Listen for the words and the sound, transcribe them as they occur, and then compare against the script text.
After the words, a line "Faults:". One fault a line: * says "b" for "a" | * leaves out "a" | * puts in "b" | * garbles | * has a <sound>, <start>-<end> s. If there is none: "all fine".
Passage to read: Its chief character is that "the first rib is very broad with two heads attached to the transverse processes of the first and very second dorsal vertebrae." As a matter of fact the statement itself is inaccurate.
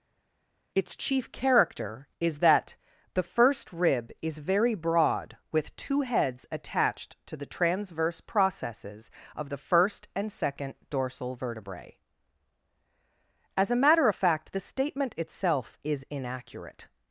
Its chief character is that "the first rib is very broad with two heads attached to the transverse processes of the first and second dorsal vertebrae." As a matter of fact the statement itself is inaccurate.
Faults:
* leaves out "very"